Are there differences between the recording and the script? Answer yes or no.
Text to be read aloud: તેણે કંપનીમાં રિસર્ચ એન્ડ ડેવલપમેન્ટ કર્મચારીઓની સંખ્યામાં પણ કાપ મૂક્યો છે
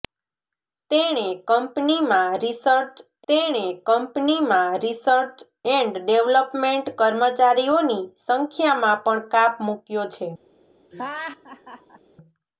yes